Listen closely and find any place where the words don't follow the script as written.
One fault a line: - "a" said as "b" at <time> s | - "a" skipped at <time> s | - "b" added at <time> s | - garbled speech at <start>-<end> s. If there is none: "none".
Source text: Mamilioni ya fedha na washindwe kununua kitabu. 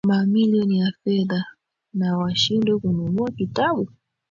none